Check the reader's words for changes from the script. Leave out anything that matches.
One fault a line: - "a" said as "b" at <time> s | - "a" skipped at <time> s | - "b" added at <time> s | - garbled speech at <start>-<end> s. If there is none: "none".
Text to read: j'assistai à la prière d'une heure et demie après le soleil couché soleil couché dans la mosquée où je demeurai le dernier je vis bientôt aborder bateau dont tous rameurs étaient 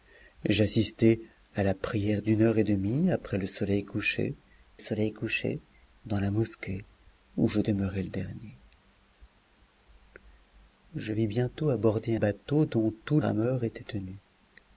none